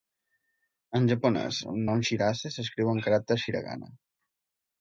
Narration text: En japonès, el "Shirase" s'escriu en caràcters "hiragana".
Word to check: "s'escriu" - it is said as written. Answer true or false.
true